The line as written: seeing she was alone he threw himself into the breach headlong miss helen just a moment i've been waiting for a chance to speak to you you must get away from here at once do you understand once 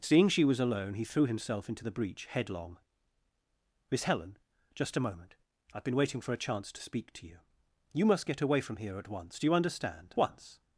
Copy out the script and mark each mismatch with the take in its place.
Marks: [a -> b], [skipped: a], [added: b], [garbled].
seeing she was alone he threw himself into the breach headlong miss helen just a moment i've been waiting for a chance to speak to you you must get away from here at once do you understand once